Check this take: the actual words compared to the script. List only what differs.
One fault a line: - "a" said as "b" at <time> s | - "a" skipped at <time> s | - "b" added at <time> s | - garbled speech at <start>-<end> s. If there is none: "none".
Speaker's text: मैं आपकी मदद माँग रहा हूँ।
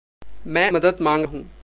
- "आपकी" skipped at 0.7 s
- "रहा" skipped at 1.2 s